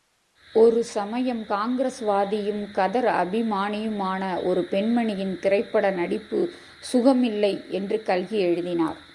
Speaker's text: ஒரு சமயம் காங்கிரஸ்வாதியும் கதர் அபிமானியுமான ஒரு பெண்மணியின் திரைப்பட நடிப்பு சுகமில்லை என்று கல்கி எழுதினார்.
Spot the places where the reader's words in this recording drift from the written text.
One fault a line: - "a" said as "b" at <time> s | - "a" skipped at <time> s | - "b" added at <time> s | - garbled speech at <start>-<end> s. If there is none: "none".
none